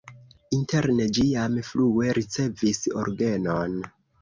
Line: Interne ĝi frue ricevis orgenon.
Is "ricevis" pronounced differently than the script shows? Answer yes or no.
no